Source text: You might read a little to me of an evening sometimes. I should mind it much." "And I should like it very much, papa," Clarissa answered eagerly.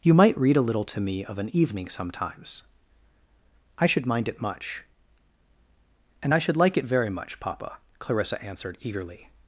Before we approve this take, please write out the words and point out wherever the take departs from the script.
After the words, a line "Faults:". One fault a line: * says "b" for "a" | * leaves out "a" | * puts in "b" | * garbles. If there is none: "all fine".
You might read a little to me of an evening sometimes. I should mind it much." "And I should like it very much, papa," Clarissa answered eagerly.
Faults:
all fine